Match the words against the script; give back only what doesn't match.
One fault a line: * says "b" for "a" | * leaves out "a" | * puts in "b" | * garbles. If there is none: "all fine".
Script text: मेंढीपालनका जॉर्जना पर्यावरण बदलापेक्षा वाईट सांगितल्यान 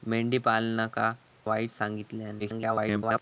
* leaves out "जॉर्जना पर्यावरण बदलापेक्षा"
* garbles